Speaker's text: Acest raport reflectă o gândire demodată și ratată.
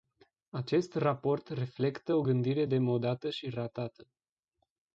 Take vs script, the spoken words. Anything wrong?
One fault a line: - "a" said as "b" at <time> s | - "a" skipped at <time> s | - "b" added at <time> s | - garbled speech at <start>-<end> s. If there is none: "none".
none